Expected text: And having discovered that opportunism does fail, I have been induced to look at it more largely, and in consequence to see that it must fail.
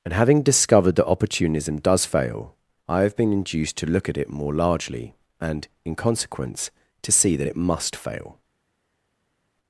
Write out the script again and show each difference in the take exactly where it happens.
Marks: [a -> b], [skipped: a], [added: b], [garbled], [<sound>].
And having discovered that opportunism does fail, I have been induced to look at it more largely, and in consequence to see that it must fail.